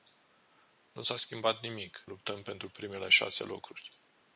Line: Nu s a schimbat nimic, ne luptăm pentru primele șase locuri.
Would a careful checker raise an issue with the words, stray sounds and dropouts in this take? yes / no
yes